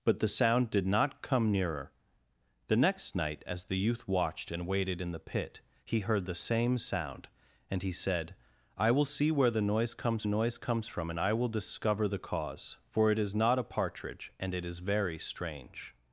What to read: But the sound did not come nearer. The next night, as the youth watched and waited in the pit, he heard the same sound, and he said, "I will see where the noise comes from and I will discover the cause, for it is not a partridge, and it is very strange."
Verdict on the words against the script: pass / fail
fail